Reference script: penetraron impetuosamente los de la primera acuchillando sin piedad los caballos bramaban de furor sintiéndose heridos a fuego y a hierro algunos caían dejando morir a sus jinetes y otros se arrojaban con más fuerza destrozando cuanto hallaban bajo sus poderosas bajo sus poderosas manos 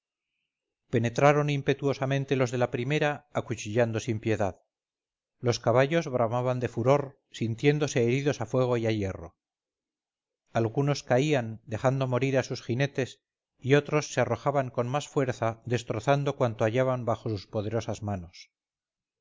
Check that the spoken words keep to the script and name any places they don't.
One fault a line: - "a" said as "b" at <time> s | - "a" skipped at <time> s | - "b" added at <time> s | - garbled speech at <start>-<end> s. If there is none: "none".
- "bajo sus poderosas" skipped at 18.0 s